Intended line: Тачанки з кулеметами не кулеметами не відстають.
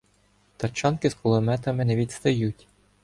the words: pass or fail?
fail